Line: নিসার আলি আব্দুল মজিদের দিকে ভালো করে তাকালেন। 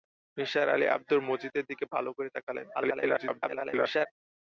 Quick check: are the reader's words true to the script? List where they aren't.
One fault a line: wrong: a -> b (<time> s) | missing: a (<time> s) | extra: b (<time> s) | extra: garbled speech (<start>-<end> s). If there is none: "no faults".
extra: garbled speech (2.7-4.1 s)